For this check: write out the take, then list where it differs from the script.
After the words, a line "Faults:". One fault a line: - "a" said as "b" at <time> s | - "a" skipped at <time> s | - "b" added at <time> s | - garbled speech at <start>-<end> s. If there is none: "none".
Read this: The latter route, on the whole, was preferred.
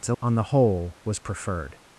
The on the whole, was preferred.
Faults:
- "latter route" skipped at 0.1 s